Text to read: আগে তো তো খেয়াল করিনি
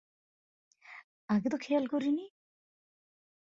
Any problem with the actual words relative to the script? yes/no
yes